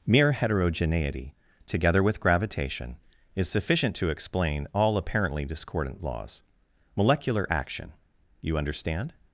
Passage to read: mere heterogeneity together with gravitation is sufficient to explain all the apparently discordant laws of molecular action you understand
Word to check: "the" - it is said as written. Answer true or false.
false